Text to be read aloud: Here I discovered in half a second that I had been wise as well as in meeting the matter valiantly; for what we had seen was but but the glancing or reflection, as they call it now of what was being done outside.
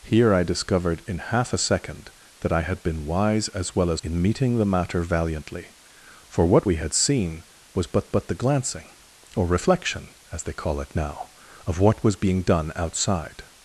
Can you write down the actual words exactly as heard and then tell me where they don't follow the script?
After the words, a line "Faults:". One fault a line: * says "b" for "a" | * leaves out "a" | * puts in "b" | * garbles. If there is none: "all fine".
Here I discovered in half a second that I had been wise as well as in meeting the matter valiantly; for what we had seen was but but the glancing or reflection, as they call it now of what was being done outside.
Faults:
all fine